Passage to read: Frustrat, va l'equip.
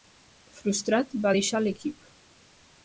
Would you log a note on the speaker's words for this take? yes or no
yes